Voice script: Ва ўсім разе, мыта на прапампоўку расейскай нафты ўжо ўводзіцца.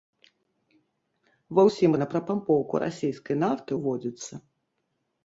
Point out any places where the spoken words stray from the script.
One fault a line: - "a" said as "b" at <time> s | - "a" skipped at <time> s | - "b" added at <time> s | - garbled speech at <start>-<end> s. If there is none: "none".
- "разе мыта" skipped at 2.0 s
- "ўжо" skipped at 3.7 s